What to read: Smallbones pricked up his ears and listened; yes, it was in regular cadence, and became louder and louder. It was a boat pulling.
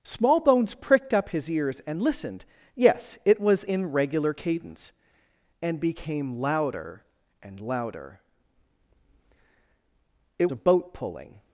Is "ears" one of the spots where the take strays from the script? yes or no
no